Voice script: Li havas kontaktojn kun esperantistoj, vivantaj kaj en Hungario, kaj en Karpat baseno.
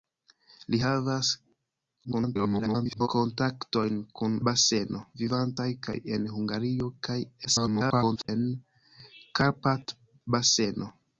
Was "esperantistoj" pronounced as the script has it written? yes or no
no